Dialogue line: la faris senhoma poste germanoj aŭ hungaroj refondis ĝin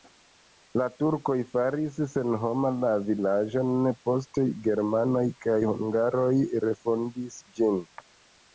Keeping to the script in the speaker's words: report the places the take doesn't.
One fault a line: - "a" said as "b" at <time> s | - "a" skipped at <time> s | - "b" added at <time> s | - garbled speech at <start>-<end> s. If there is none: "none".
- "turkoj" added at 1.0 s
- "la vilaĝon" added at 2.9 s
- "aŭ" said as "kaj" at 5.5 s